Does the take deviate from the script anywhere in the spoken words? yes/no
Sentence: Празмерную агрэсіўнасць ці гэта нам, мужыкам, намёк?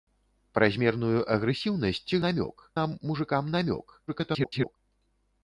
yes